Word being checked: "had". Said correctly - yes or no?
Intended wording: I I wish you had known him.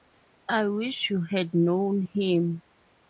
yes